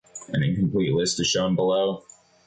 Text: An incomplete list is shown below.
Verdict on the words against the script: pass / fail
pass